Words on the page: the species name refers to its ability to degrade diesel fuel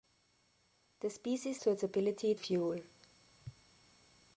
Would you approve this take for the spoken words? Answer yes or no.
no